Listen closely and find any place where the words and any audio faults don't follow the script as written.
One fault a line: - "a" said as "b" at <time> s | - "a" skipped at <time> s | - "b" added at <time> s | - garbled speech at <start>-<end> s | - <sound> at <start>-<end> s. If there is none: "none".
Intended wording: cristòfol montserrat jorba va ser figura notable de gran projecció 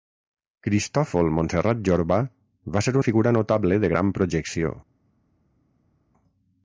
none